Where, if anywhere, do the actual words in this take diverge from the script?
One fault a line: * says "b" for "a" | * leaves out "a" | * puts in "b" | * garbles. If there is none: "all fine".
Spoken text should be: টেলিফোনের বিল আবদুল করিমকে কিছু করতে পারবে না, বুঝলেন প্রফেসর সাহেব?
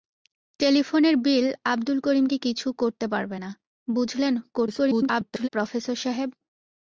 * garbles